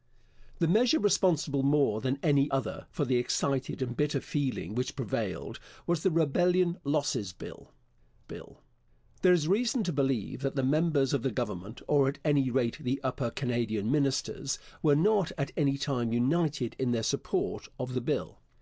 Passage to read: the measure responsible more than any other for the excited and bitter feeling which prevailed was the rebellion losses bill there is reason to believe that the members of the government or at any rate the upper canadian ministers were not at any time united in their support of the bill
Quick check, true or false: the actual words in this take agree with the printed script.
false